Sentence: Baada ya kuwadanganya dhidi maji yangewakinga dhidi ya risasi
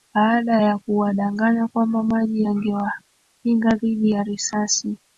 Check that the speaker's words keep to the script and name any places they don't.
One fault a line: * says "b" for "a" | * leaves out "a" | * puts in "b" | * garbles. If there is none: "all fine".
* says "kwamba" for "dhidi"